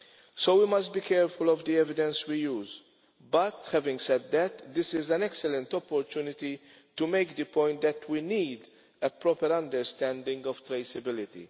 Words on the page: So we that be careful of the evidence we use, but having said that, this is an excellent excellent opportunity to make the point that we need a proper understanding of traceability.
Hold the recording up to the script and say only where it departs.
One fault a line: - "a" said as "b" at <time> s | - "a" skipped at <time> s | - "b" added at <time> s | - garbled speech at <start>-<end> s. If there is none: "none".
- "that" said as "must" at 0.7 s
- "excellent" skipped at 5.7 s